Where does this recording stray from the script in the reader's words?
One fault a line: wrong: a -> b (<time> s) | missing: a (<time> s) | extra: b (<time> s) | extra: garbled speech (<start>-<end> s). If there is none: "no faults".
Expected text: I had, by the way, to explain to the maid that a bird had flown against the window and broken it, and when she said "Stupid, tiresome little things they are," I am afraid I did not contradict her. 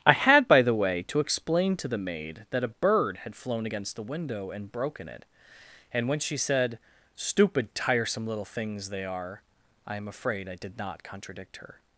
no faults